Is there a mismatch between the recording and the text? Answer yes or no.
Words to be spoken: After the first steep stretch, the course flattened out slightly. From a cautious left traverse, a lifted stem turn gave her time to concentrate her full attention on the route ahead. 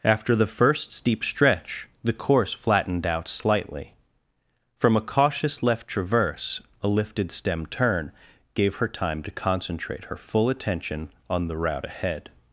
no